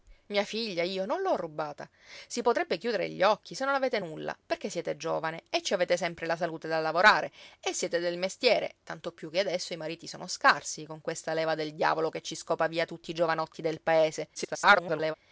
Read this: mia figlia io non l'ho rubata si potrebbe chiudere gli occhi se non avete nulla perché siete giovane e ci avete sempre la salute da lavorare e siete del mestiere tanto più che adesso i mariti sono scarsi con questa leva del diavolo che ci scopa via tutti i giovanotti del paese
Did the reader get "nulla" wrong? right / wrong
right